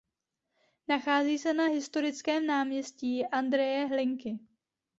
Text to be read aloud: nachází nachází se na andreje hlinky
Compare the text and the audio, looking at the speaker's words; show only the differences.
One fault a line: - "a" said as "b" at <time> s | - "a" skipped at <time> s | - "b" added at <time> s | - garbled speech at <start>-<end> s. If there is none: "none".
- "nachází" skipped at 1.4 s
- "historickém náměstí" added at 1.6 s